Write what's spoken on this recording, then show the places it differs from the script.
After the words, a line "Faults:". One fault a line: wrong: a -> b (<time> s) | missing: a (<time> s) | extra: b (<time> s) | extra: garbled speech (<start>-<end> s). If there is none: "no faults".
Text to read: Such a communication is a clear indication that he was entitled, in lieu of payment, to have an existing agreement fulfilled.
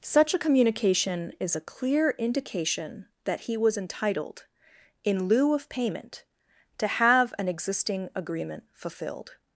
Such a communication is a clear indication that he was entitled, in lieu of payment, to have an existing agreement fulfilled.
Faults:
no faults